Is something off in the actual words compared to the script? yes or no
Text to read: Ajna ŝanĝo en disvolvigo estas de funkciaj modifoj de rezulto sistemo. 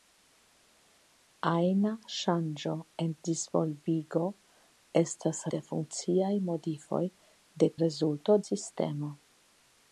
no